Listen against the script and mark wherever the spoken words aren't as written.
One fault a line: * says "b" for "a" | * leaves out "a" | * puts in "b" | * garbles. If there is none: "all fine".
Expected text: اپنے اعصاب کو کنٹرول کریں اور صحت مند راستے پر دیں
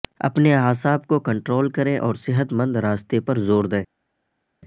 * puts in "زور"